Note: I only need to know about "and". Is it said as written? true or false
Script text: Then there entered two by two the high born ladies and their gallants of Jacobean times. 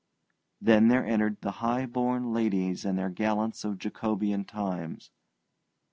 true